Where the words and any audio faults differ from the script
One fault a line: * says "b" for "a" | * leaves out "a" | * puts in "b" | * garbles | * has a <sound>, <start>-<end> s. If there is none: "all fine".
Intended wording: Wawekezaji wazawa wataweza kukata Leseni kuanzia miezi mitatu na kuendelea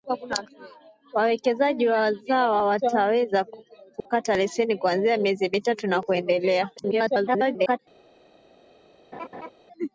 * has a dropout, 4.0-4.1 s
* garbles
* has a laugh, 9.1-9.5 s